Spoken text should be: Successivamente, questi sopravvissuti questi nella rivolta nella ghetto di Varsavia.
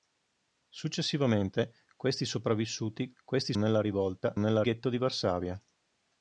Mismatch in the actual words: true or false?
false